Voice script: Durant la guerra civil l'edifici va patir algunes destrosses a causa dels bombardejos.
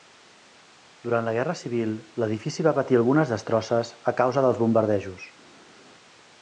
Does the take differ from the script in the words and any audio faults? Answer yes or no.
no